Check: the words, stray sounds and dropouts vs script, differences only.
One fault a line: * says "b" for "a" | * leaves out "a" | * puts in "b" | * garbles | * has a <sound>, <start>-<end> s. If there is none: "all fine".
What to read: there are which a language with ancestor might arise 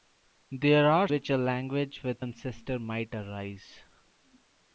all fine